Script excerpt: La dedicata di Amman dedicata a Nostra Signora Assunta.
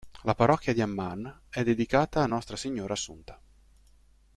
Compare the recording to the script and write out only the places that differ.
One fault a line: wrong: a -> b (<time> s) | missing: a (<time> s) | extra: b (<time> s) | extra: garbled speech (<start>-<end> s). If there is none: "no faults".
wrong: dedicata -> parrocchia (0.3 s)
extra: è (1.5 s)